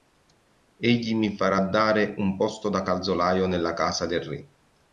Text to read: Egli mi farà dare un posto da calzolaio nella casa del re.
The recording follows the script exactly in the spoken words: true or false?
true